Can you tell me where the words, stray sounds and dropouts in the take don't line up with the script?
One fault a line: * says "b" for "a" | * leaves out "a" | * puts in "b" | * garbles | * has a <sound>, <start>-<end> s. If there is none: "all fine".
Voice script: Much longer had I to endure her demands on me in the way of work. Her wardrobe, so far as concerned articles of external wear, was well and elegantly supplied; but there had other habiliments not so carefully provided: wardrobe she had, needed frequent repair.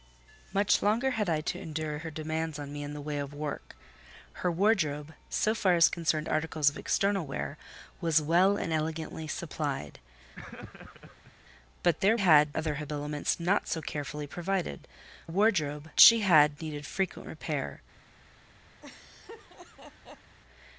* has a laugh, 10.4-11.3 s
* has a laugh, 18.8-20.4 s